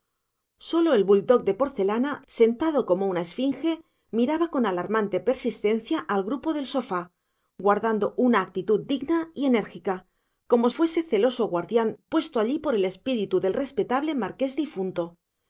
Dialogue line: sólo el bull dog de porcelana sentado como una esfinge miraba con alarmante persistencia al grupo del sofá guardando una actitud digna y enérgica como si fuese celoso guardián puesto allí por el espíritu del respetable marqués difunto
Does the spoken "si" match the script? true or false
false